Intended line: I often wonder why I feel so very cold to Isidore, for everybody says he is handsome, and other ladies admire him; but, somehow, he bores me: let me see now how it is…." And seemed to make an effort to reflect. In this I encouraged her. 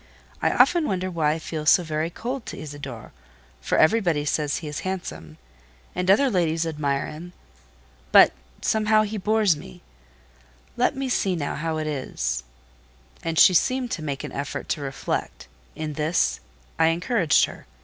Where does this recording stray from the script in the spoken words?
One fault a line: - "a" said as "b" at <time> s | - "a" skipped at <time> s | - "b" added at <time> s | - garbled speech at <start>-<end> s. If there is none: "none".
- "she" added at 13.4 s